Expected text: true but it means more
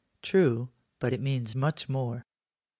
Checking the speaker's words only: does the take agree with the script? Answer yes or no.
no